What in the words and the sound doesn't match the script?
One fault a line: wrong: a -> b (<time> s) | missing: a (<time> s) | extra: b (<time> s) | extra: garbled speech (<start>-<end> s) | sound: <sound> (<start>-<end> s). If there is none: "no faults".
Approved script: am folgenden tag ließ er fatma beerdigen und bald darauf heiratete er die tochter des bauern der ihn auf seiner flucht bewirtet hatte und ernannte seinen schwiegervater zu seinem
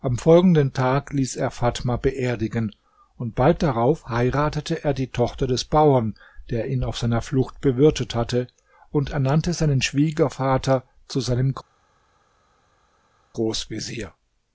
no faults